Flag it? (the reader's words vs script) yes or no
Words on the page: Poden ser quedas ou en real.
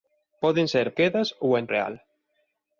no